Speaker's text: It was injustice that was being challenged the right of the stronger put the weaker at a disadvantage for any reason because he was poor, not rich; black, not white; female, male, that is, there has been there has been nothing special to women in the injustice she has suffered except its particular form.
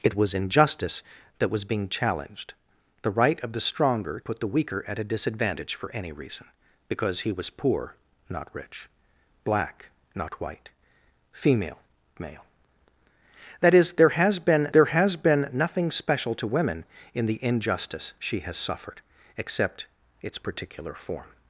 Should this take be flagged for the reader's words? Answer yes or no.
no